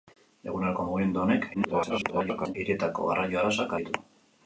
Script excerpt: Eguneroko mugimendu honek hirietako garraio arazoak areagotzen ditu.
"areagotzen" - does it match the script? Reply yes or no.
no